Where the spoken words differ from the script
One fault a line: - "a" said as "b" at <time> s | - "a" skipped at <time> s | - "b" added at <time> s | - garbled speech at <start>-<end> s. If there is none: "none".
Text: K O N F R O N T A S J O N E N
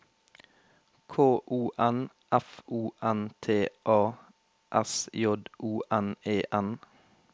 - "R" skipped at 2.6 s